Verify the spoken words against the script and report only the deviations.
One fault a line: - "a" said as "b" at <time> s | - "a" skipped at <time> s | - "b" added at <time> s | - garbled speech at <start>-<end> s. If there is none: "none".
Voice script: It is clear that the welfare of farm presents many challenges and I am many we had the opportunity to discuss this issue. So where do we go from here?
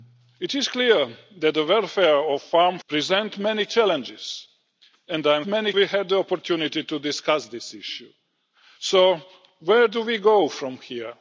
none